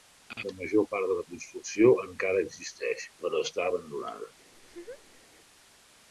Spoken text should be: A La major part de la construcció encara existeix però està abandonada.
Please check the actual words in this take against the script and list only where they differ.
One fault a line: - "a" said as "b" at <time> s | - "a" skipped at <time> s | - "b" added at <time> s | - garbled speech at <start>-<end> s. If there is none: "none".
none